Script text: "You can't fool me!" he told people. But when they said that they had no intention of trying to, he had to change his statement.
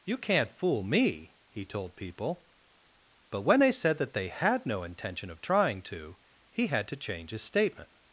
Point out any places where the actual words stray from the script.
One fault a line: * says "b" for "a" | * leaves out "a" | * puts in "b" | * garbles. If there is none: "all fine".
all fine